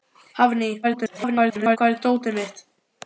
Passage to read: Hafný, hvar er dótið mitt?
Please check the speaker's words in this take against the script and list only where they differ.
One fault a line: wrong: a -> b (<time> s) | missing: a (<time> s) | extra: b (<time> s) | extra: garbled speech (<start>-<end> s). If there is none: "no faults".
extra: garbled speech (0.8-1.8 s)